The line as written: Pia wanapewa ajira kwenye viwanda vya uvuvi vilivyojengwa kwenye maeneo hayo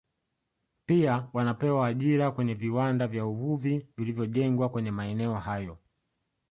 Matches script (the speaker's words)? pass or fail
pass